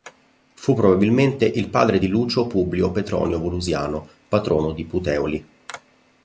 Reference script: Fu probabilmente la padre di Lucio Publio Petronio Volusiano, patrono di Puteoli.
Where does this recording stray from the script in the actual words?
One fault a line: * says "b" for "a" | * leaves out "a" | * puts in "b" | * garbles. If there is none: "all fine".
* says "il" for "la"